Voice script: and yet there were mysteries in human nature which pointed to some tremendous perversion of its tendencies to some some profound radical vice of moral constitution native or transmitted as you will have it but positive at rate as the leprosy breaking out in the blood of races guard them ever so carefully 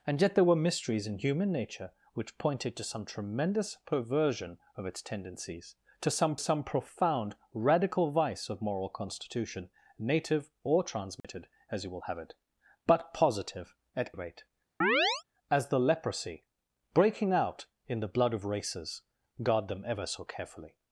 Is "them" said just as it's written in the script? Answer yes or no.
yes